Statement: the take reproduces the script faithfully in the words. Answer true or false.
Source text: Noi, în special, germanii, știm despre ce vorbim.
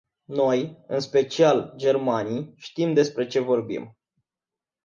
true